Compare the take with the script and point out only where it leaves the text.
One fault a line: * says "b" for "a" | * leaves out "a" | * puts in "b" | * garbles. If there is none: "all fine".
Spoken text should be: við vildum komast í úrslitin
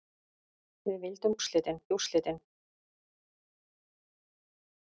* says "úrslitin" for "komast"